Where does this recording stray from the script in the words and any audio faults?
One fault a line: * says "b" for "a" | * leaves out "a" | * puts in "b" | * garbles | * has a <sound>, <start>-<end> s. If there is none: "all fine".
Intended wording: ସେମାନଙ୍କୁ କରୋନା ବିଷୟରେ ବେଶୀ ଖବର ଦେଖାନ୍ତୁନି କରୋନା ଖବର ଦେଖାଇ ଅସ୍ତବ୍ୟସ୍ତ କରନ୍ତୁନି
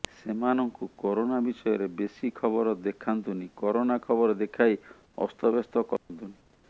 * has a dropout, 6.0-6.1 s